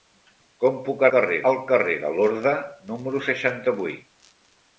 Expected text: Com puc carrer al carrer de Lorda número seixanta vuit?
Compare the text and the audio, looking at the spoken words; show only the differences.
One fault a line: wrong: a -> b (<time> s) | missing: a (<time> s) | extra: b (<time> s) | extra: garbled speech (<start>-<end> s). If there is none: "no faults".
no faults